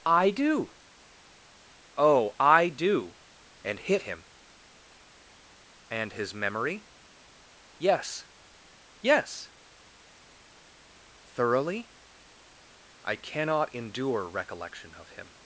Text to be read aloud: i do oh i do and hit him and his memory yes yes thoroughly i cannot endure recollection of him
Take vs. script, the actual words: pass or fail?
pass